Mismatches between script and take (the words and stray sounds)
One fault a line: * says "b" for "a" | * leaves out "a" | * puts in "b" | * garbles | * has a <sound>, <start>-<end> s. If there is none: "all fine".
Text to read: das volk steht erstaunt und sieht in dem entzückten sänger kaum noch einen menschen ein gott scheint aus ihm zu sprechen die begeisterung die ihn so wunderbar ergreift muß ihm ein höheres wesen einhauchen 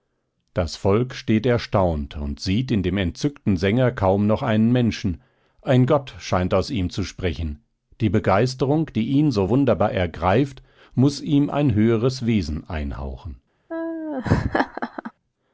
* has a laugh, 13.7-15.1 s